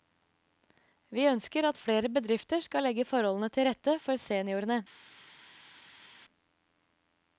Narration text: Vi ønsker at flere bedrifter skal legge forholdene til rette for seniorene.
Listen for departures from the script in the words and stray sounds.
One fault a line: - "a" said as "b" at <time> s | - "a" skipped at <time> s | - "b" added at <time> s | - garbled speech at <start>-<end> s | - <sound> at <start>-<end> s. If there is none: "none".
none